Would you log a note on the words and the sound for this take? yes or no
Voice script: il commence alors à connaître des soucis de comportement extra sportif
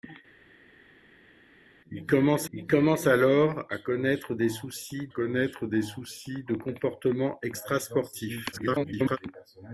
yes